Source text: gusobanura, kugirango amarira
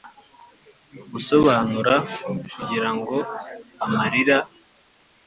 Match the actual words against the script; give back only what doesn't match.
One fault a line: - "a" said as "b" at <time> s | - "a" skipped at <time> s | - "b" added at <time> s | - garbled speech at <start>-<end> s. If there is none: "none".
none